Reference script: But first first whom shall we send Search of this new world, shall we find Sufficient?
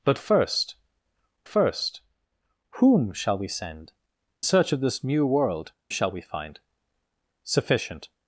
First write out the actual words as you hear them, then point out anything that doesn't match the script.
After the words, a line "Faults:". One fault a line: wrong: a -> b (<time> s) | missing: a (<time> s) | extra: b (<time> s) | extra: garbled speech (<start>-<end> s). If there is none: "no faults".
But first first whom shall we send Search of this new world, shall we find Sufficient?
Faults:
no faults